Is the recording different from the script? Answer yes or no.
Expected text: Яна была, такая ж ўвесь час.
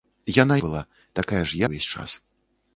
no